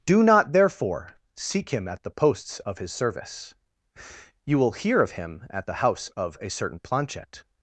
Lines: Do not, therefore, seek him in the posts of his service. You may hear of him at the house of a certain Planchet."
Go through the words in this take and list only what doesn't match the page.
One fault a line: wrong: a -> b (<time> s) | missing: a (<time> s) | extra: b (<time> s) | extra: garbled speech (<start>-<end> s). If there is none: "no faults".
wrong: in -> at (1.9 s)
wrong: may -> will (4.6 s)